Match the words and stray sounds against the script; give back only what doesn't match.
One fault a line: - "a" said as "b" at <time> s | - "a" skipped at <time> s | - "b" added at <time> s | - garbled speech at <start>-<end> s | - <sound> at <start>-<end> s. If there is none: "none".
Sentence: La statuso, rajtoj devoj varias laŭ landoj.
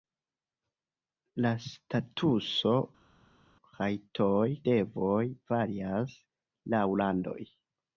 none